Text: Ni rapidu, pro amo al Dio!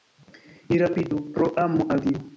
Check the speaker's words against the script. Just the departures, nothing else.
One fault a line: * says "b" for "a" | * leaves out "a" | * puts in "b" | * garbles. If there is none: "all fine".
all fine